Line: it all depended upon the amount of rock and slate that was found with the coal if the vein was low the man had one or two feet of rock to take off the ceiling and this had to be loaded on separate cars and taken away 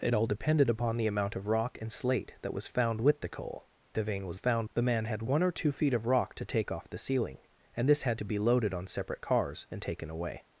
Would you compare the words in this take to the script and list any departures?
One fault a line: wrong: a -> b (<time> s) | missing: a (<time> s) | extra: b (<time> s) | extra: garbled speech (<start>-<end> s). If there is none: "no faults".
missing: if (3.7 s)
wrong: low -> found (4.3 s)